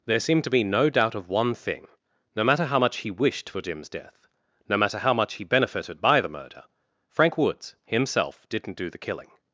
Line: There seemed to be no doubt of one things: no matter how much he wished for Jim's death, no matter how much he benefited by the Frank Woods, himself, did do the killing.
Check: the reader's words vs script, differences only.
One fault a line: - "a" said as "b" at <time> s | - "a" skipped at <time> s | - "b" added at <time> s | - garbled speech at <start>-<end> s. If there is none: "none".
- "things" said as "thing" at 1.5 s
- "murder" added at 6.3 s
- "did" said as "didn't" at 8.5 s